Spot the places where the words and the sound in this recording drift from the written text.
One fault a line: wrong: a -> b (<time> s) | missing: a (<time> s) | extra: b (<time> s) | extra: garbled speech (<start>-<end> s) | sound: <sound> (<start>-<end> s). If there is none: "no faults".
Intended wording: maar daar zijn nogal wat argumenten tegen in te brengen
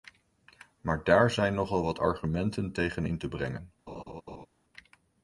sound: laugh (3.9-4.5 s)